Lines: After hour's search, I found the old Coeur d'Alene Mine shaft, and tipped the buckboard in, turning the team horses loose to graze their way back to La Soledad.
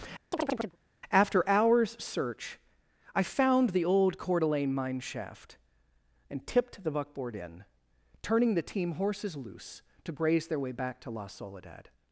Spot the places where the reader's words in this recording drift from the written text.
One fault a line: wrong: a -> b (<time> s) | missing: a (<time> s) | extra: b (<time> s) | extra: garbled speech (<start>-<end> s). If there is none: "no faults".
no faults